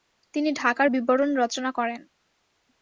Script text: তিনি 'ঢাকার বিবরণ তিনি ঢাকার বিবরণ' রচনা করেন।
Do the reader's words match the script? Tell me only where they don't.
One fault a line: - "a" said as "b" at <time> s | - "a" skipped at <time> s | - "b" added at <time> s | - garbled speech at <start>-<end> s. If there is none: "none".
- "তিনি ঢাকার বিবরণ" skipped at 1.4 s